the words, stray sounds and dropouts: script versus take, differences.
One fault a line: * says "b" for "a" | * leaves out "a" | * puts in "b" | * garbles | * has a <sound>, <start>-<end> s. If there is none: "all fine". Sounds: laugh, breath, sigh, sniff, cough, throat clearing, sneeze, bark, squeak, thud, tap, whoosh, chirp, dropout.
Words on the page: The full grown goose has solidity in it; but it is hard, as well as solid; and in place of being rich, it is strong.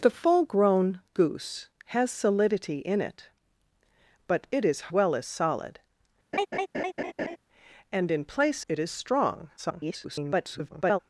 * leaves out "hard as"
* has a laugh, 6.3-7.4 s
* leaves out "of being rich"
* garbles